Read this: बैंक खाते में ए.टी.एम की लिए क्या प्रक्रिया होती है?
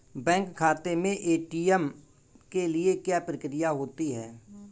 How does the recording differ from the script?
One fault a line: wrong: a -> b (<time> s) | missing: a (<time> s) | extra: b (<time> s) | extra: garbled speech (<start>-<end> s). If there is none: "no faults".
wrong: की -> के (2.5 s)